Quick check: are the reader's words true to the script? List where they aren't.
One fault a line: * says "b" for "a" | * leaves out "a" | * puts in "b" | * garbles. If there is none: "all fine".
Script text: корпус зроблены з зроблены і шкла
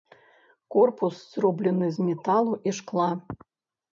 * says "металу" for "зроблены"